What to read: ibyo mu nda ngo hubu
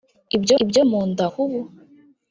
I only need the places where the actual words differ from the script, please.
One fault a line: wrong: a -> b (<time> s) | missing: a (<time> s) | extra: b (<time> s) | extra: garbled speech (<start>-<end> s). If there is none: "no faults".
extra: ibyo (0.6 s)
missing: ngo (1.3 s)